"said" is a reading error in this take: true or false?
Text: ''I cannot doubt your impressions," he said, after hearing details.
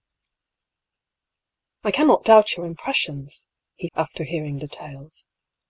true